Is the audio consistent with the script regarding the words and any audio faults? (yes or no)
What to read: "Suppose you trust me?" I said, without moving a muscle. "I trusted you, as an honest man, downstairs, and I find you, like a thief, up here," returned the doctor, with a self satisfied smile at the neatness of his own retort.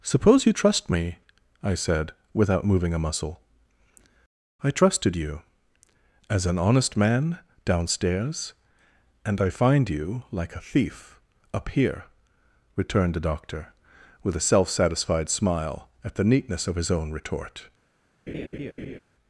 no